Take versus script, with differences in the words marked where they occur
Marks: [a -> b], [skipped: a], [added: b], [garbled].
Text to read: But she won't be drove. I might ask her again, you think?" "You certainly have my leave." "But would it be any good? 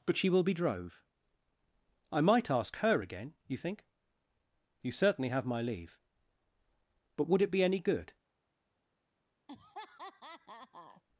But she [won't -> will] be drove. I might ask her again, you think?" "You certainly have my leave." "But would it be any good?